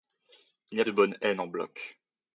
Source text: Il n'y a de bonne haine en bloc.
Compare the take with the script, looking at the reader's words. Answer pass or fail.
pass